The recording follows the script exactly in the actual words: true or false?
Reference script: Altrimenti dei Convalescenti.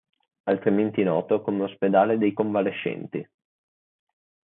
false